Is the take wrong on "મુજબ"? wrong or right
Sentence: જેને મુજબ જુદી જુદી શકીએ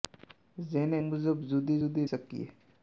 right